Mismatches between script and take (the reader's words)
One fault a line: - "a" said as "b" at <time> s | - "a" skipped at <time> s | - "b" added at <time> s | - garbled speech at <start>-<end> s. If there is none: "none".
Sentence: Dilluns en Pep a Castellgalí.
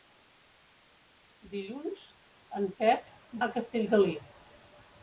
none